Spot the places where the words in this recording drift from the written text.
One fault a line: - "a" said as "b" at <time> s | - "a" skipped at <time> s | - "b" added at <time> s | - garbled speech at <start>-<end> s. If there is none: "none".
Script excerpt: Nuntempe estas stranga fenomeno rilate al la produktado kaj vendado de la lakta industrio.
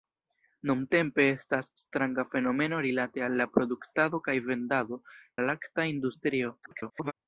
- "de" skipped at 5.0 s
- garbled speech at 6.6-7.1 s